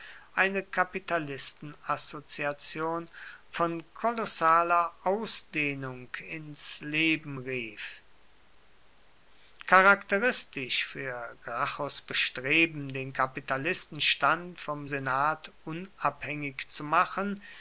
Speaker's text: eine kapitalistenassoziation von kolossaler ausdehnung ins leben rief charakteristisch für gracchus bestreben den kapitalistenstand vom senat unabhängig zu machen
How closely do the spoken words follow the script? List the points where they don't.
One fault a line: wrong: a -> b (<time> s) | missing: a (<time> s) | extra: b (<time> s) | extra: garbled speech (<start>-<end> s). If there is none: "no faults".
no faults